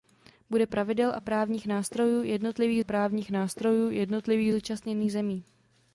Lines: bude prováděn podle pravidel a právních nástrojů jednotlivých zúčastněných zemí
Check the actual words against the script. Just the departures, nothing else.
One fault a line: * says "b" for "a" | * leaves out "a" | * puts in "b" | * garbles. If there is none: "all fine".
* says "pravidel a právních nástrojů jednotlivých" for "prováděn podle pravidel a"